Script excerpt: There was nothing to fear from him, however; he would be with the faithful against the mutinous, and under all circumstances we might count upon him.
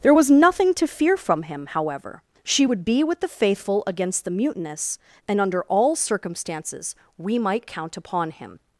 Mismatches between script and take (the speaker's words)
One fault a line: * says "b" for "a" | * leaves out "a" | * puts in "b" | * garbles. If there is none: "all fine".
* says "she" for "he"